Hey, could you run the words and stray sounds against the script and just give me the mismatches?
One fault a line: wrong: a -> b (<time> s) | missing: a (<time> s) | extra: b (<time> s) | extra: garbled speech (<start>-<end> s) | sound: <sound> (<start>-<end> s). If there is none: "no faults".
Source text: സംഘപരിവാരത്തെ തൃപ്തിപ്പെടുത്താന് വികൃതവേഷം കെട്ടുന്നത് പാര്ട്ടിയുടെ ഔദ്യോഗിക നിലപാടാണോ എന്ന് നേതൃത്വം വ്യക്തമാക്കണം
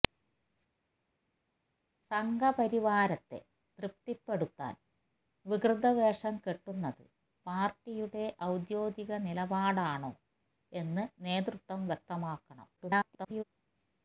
extra: garbled speech (12.8-13.4 s)